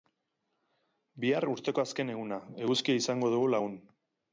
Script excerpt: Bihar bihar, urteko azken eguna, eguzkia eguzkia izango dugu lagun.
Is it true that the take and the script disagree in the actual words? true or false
true